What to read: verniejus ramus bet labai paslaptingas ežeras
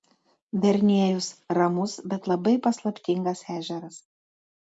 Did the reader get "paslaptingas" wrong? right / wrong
right